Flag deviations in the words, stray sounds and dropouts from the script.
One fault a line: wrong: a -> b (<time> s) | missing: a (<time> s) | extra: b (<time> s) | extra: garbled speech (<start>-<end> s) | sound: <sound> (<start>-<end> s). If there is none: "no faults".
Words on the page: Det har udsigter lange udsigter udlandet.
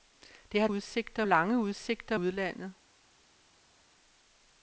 no faults